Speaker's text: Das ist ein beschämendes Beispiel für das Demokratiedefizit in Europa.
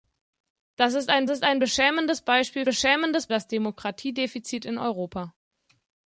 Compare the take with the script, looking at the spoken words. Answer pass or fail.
fail